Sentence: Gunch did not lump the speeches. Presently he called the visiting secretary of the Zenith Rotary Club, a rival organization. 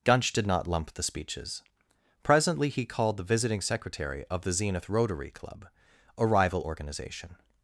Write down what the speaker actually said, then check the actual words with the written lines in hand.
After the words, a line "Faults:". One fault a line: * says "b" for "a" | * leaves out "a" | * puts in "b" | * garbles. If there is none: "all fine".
Gunch did not lump the speeches. Presently he called the visiting secretary of the Zenith Rotary Club, a rival organization.
Faults:
all fine